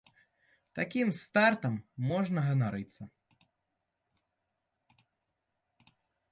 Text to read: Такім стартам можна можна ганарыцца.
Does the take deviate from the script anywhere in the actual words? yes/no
yes